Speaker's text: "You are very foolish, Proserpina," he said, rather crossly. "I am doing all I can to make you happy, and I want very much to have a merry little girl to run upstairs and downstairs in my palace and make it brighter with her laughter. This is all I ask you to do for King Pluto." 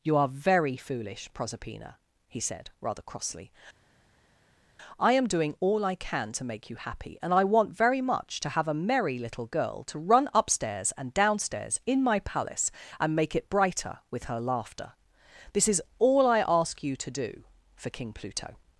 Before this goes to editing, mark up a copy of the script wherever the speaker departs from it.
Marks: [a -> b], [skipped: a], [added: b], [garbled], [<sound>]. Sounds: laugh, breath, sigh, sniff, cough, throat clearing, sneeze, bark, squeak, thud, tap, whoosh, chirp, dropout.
"You are very foolish, Proserpina," he said, rather crossly. "I am doing all I can to make you happy, and I want very much to have a merry little girl to run upstairs and downstairs in my palace and make it brighter with her laughter. This is all I ask you to do for King Pluto."